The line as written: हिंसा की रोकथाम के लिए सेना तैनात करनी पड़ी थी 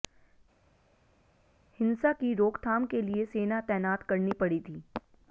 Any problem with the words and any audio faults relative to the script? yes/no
no